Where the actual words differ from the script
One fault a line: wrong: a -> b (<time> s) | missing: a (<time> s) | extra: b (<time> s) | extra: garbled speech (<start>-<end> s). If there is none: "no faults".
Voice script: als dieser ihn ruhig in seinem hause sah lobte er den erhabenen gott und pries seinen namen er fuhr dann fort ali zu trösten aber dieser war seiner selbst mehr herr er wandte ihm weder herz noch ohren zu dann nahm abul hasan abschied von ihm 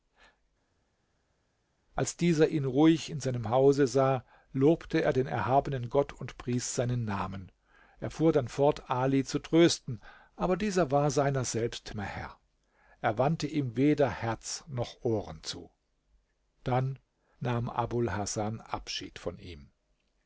no faults